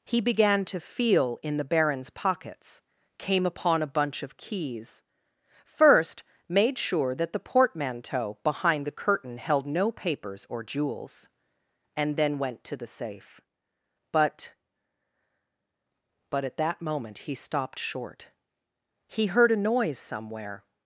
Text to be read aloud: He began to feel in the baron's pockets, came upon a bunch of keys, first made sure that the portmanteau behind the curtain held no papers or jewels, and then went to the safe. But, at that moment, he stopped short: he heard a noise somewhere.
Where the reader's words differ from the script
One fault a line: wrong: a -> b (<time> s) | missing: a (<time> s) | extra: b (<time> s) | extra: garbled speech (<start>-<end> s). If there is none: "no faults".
extra: But (16.3 s)